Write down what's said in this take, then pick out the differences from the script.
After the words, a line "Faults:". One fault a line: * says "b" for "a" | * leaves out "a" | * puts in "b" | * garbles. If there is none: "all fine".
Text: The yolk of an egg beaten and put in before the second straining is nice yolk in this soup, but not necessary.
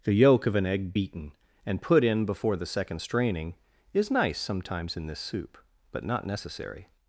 The yolk of an egg beaten and put in before the second straining is nice sometimes in this soup, but not necessary.
Faults:
* says "sometimes" for "yolk"